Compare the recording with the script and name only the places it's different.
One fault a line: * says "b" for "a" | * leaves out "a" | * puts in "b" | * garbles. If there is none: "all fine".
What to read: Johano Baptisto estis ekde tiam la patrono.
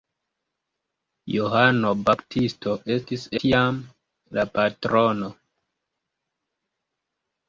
* leaves out "ekde"